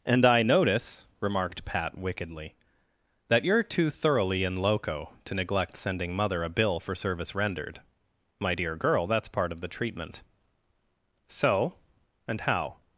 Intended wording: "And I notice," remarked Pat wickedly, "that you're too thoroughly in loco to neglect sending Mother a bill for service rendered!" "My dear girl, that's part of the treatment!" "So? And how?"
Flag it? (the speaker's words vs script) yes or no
no